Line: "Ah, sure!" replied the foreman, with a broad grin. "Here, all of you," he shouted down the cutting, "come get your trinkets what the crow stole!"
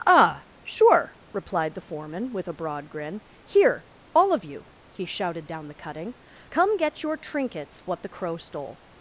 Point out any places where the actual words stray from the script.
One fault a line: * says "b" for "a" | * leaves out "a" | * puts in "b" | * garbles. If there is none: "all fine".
all fine